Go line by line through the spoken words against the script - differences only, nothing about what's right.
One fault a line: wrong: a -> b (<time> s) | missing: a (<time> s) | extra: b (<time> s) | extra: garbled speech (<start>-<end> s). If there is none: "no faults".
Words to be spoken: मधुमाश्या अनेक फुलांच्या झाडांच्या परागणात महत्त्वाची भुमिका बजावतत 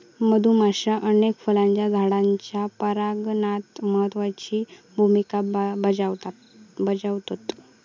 no faults